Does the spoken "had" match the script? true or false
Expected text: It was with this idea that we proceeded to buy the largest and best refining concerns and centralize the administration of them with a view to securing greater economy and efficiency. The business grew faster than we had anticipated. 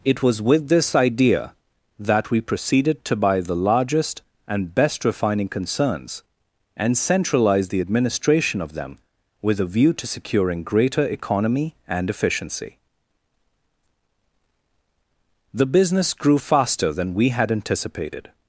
true